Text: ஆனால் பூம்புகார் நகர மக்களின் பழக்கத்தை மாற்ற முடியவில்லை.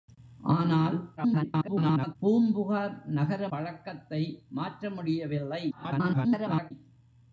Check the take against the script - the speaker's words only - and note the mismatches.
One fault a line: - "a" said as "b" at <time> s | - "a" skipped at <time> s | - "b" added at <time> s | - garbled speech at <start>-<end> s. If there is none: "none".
- garbled speech at 1.2-2.2 s
- "மக்களின்" skipped at 3.5 s
- garbled speech at 5.7-6.7 s